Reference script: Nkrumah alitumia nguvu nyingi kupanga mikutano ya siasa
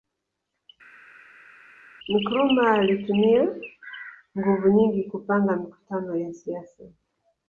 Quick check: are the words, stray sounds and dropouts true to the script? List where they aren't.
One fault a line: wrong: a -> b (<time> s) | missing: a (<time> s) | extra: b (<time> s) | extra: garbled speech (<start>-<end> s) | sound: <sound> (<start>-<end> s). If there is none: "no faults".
no faults